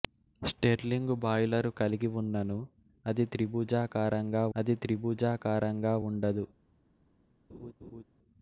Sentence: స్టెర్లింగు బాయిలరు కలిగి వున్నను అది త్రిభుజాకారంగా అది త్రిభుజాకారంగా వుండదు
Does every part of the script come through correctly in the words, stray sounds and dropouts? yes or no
no